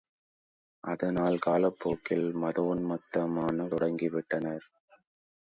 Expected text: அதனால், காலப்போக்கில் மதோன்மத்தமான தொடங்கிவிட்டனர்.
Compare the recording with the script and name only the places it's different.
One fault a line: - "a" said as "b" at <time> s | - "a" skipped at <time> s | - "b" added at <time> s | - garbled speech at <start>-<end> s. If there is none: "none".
none